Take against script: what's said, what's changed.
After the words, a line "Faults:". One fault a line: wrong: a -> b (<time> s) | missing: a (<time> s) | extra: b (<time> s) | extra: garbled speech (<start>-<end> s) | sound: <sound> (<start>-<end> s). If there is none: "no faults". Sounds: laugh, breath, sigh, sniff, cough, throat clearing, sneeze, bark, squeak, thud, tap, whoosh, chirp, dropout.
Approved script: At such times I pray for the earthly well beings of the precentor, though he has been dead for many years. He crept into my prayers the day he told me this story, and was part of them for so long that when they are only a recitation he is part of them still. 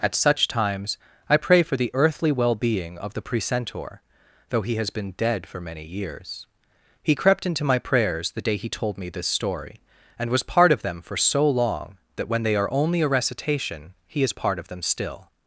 At such times I pray for the earthly well being of the precentor, though he has been dead for many years. He crept into my prayers the day he told me this story, and was part of them for so long that when they are only a recitation he is part of them still.
Faults:
wrong: beings -> being (2.5 s)